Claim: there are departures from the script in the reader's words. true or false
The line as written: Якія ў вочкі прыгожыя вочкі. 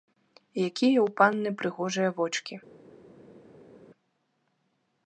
true